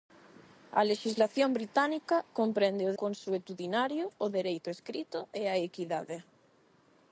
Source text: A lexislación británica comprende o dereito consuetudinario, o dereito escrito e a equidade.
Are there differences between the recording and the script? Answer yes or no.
yes